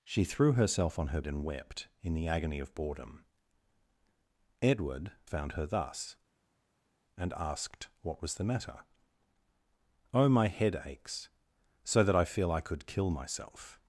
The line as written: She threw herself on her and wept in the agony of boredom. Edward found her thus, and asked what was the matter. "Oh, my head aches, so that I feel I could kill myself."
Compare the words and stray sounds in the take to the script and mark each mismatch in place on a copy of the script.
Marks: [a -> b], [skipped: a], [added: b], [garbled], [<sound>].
She threw herself on her and wept in the agony of boredom. Edward found her thus, and asked what was the matter. "Oh, my head aches, so that I feel I could kill myself."